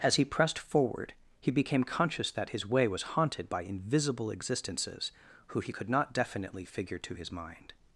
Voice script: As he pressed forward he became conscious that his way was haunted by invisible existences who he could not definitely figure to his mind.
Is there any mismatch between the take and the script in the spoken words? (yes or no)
no